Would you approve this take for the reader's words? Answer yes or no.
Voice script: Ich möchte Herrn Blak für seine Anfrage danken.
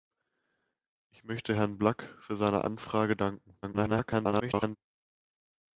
no